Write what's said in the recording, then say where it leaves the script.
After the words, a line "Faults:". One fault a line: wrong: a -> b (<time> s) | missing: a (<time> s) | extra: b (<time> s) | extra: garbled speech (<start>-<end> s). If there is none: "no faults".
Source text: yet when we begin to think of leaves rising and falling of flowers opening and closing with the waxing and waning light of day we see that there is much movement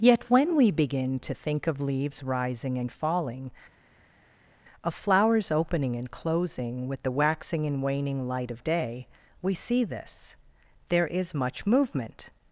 yet when we begin to think of leaves rising and falling of flowers opening and closing with the waxing and waning light of day we see this there is much movement
Faults:
wrong: that -> this (9.8 s)